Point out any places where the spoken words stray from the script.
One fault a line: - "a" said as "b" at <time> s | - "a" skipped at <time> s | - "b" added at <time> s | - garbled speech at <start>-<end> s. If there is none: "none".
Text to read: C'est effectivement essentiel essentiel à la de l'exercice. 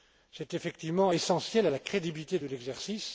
- "essentiel" skipped at 1.7 s
- "crédibilité" added at 1.8 s